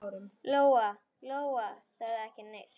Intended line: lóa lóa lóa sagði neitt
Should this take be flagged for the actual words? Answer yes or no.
yes